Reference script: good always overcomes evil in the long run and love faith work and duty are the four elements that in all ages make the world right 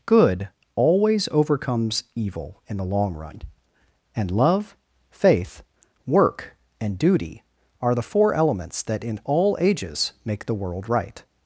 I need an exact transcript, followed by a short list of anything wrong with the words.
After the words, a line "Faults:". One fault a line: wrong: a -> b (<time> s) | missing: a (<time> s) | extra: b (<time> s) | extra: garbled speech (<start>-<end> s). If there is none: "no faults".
good always overcomes evil in the long run and love faith work and duty are the four elements that in all ages make the world right
Faults:
no faults